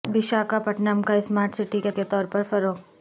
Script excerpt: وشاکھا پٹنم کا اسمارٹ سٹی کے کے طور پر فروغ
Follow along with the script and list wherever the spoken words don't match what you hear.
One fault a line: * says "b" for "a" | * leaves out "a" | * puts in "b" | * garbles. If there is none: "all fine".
all fine